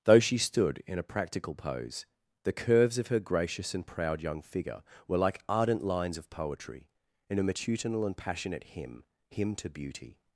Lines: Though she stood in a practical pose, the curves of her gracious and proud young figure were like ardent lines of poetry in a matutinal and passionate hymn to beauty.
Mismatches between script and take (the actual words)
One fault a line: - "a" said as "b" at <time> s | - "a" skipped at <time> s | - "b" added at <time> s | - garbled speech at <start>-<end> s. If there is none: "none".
- "hymn" added at 9.3 s